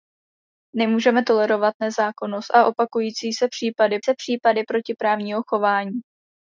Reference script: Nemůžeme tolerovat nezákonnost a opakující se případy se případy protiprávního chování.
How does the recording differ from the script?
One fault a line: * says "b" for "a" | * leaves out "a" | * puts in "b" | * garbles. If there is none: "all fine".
all fine